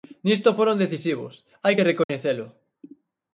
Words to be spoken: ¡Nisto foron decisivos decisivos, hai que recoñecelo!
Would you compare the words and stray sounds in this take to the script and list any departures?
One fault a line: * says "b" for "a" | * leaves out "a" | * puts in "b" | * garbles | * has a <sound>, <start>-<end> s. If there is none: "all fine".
* leaves out "decisivos"
* has a dropout, 2.0-2.1 s